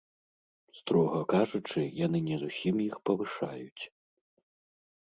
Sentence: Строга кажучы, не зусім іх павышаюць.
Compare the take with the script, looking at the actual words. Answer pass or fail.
fail